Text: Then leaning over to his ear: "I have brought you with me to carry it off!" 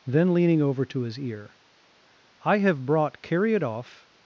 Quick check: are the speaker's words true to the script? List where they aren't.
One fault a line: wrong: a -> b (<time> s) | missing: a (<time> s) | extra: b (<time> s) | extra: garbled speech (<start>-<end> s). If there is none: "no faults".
missing: you with me to (3.2 s)